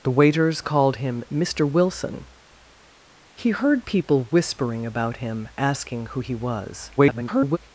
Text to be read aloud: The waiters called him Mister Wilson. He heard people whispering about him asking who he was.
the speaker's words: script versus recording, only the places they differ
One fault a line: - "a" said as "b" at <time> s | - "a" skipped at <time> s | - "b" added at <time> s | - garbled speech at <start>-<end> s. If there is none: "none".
- garbled speech at 7.0-7.6 s